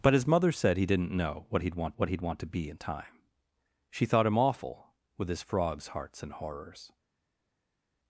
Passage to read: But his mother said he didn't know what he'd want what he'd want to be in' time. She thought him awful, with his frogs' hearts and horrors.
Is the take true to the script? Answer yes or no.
yes